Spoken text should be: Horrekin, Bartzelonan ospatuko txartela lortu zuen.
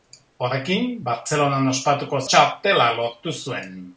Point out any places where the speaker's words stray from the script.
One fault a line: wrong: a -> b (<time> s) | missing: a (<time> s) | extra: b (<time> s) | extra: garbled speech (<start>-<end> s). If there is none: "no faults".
no faults